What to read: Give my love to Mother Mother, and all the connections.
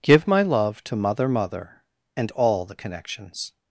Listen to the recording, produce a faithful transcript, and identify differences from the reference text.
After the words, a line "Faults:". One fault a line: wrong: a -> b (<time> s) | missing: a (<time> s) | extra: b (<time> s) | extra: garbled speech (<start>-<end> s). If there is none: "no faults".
Give my love to Mother Mother, and all the connections.
Faults:
no faults